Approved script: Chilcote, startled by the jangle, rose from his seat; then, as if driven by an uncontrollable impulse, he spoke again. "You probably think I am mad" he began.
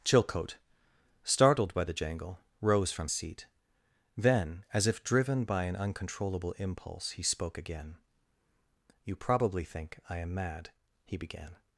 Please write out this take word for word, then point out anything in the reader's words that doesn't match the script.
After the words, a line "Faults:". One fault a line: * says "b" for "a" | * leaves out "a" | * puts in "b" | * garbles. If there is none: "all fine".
Chilcote, startled by the jangle, rose from seat; then, as if driven by an uncontrollable impulse, he spoke again. "You probably think I am mad" he began.
Faults:
* leaves out "his"